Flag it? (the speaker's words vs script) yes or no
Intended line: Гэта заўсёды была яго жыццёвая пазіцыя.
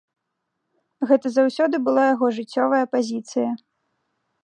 no